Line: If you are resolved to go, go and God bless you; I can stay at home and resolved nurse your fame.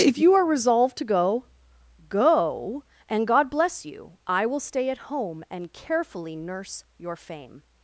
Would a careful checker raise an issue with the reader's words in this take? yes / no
yes